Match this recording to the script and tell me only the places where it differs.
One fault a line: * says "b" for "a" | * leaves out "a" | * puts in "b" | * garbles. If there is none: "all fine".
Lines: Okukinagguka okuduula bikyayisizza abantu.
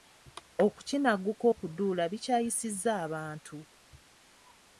all fine